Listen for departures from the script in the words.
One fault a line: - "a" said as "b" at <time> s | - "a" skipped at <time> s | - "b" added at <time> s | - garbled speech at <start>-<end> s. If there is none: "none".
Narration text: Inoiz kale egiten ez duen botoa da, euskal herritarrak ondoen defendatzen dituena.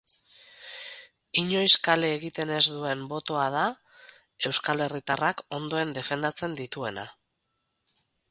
none